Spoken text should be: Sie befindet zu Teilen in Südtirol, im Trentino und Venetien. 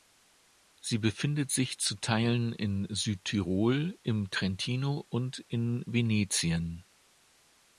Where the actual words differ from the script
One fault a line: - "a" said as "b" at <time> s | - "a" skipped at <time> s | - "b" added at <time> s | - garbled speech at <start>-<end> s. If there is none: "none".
- "sich" added at 1.5 s
- "in" added at 5.4 s